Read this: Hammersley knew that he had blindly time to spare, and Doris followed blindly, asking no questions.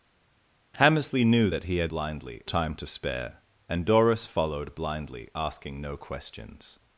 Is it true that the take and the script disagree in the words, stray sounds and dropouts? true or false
false